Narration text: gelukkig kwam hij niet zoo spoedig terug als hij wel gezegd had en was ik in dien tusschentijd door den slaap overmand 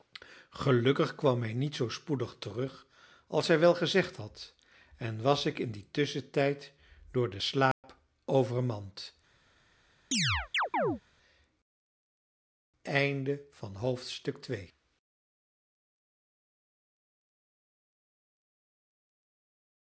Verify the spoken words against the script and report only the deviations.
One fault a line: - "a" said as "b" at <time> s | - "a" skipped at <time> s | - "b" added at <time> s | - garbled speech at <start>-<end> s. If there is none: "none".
none